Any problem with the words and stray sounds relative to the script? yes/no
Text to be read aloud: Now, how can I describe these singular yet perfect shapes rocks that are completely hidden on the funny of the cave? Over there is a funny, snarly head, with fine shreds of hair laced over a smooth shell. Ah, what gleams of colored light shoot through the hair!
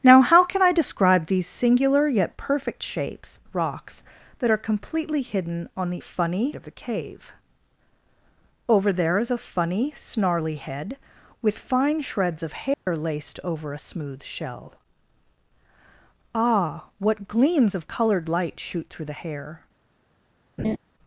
yes